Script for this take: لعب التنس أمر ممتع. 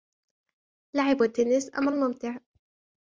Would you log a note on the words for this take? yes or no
no